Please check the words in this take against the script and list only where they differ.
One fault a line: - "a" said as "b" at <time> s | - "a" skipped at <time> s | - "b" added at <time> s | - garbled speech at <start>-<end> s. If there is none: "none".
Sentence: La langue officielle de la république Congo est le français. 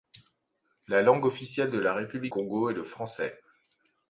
none